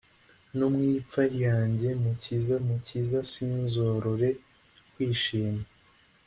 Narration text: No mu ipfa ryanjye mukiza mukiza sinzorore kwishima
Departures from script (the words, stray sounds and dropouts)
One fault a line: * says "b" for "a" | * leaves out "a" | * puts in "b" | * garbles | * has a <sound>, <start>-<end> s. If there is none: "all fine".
all fine